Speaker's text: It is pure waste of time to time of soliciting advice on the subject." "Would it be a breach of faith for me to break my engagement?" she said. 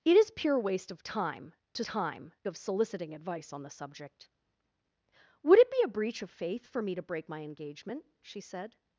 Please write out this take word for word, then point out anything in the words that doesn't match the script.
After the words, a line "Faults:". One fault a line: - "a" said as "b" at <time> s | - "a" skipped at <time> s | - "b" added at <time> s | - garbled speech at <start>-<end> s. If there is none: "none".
It is pure waste of time to time of soliciting advice on the subject." "Would it be a breach of faith for me to break my engagement?" she said.
Faults:
none